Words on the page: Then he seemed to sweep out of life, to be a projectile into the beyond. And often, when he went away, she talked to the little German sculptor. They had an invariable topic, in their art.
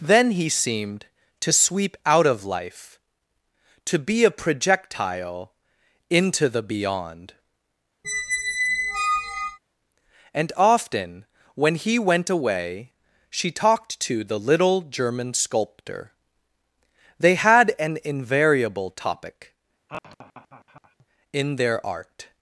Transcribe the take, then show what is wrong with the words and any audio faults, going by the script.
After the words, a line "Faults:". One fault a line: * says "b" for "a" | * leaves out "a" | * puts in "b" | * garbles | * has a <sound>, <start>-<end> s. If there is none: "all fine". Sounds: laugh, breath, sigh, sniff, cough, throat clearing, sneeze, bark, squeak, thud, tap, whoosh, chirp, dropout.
Then he seemed to sweep out of life, to be a projectile into the beyond. And often, when he went away, she talked to the little German sculptor. They had an invariable topic, in their art.
Faults:
* has a squeak, 8.0-9.6 s
* has a laugh, 19.9-21.1 s